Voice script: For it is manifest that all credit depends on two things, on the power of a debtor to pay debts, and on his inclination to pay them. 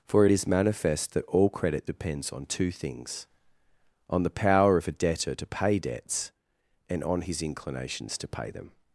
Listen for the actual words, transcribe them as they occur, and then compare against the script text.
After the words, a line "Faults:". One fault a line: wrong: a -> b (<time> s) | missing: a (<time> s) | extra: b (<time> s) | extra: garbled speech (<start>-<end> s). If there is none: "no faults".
For it is manifest that all credit depends on two things, on the power of a debtor to pay debts, and on his inclinations to pay them.
Faults:
wrong: inclination -> inclinations (7.4 s)